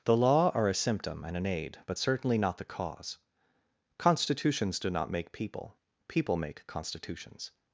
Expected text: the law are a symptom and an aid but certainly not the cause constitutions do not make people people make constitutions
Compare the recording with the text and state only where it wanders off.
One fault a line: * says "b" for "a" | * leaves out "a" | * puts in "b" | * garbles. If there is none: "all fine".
all fine